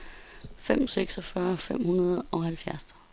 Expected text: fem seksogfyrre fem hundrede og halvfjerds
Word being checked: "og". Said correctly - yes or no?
yes